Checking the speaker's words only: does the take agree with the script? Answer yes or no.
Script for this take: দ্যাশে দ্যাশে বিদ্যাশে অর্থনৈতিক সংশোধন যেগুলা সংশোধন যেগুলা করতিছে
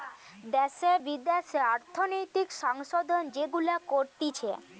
no